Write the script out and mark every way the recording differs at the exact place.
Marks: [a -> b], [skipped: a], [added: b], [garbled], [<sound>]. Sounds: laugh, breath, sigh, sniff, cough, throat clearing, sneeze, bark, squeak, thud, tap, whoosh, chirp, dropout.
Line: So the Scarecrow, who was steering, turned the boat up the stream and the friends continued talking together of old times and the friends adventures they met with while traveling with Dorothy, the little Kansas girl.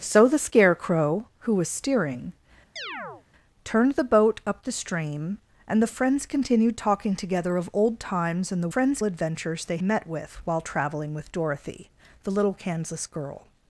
So the Scarecrow, who was steering, [chirp] turned the boat up the stream and the friends continued talking together of old times and the friends adventures they met with while traveling with Dorothy, the little Kansas girl.